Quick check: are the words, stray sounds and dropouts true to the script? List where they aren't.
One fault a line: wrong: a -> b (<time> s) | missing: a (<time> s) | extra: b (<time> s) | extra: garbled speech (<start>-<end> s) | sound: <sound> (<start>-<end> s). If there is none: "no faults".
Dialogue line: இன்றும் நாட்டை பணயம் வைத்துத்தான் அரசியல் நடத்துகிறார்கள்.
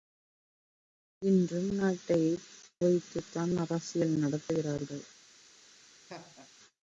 missing: பணயம் (2.2 s)
sound: laugh (6.1-6.5 s)